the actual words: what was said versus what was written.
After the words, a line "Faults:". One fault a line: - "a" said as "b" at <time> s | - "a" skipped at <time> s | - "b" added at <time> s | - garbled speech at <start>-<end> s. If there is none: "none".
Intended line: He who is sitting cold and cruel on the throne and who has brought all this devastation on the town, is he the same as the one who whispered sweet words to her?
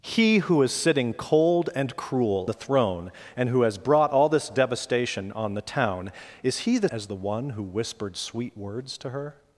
He who is sitting cold and cruel the throne and who has brought all this devastation on the town, is he the as the one who whispered sweet words to her?
Faults:
- "on" skipped at 2.5 s
- "same" skipped at 6.9 s